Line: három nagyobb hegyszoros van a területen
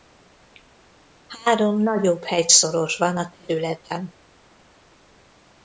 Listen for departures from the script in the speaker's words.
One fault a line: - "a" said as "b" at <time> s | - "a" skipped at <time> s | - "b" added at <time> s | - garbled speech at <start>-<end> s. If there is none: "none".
none